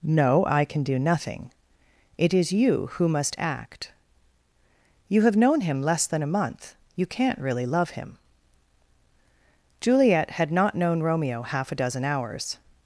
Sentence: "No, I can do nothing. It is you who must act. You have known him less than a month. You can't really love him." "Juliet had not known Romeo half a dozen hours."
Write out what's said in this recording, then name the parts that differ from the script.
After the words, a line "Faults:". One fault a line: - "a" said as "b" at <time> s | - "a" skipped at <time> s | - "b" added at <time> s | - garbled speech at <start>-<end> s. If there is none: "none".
"No, I can do nothing. It is you who must act. You have known him less than a month. You can't really love him." "Juliet had not known Romeo half a dozen hours."
Faults:
none